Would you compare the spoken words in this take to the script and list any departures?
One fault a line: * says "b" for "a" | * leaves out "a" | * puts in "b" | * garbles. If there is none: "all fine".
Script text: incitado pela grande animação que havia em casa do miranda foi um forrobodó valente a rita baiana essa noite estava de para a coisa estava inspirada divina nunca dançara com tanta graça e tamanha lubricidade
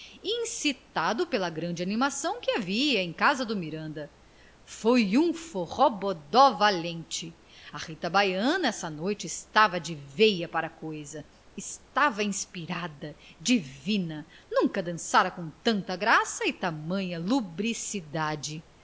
* puts in "veia"